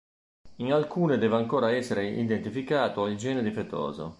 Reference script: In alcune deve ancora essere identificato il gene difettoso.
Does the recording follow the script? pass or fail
pass